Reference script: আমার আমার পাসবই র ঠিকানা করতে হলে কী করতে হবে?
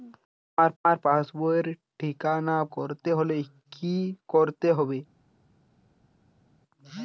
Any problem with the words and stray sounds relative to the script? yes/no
no